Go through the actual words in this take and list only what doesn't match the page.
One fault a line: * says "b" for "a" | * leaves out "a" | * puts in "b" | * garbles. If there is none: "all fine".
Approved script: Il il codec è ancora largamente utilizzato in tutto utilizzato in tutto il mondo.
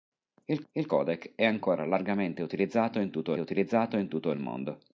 all fine